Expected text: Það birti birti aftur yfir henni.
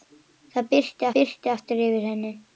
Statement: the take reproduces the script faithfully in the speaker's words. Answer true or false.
true